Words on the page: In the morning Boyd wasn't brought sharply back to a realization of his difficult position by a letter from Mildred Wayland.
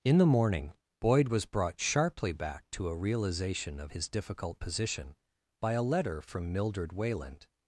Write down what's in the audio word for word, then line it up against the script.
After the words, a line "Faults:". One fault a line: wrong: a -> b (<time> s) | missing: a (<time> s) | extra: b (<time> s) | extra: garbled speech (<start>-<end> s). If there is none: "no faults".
In the morning Boyd was brought sharply back to a realization of his difficult position by a letter from Mildred Wayland.
Faults:
wrong: wasn't -> was (1.3 s)